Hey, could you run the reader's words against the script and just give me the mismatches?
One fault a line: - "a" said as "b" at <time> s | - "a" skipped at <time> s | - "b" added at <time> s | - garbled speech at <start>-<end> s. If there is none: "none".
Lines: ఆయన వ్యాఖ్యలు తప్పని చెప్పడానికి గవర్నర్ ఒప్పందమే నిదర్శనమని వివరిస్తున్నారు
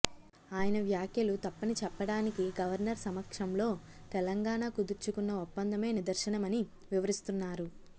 - "సమక్షంలో తెలంగాణ కుదుర్చుకున్న" added at 3.0 s